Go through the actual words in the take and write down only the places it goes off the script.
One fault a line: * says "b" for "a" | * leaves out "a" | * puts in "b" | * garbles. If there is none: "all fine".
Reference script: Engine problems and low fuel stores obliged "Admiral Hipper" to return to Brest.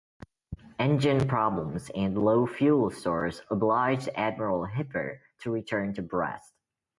all fine